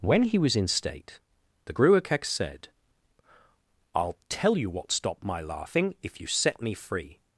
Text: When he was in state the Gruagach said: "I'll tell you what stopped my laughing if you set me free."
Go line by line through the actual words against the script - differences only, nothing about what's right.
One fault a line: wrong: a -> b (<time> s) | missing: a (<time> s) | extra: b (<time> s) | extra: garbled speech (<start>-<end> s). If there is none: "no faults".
no faults